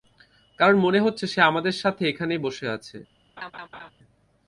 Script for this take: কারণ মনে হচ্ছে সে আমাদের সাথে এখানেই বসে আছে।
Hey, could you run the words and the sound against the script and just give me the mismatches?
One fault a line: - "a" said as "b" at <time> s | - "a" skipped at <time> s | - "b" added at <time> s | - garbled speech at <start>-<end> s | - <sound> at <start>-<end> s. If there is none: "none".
- laugh at 3.4-3.9 s